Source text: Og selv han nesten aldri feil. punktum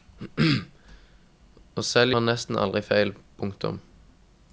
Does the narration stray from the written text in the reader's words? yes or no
no